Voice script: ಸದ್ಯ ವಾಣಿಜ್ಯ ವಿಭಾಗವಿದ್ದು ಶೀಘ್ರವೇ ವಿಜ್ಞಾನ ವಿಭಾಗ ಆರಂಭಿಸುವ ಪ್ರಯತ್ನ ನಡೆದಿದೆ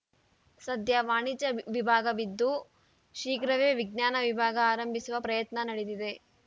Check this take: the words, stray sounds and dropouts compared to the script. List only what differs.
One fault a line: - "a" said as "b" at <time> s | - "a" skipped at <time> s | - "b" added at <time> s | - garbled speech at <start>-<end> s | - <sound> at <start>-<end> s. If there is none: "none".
none